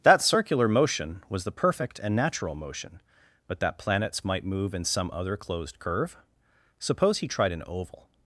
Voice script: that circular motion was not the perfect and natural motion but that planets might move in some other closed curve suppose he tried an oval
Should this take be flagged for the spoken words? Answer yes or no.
yes